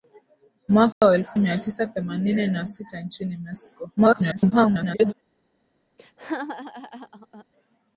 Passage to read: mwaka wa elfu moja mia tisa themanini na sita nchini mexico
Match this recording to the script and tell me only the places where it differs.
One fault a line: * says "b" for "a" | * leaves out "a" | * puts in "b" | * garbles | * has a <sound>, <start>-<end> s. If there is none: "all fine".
* has a dropout, 0.9-1.0 s
* leaves out "moja"
* garbles
* has a laugh, 6.0-7.4 s